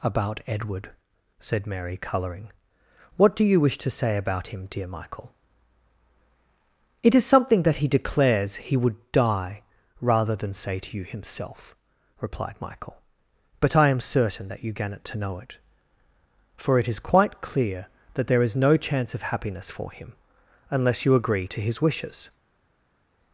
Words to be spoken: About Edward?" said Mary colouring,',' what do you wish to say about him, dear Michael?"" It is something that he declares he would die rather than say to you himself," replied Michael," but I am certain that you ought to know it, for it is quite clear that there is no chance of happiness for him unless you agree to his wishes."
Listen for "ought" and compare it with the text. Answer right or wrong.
wrong